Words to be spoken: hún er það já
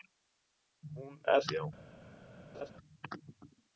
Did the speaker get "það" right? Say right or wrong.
wrong